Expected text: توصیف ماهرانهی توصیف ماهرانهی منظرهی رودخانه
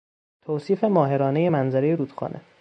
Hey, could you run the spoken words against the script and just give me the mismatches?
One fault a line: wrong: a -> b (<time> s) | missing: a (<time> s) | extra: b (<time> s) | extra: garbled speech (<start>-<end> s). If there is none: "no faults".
missing: توصیف ماهرانهی (1.5 s)